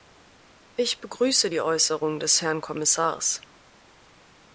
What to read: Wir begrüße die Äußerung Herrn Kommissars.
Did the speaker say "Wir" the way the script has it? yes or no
no